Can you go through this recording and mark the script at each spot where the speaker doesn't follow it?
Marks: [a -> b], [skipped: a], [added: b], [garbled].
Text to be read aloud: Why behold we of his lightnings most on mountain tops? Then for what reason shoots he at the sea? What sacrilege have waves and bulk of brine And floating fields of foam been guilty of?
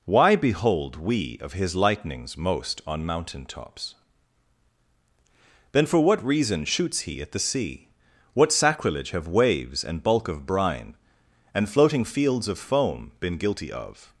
Why behold we of his lightnings most on mountain tops? Then for what reason shoots he at the sea? What sacrilege have waves and bulk of brine And floating fields of foam been guilty of?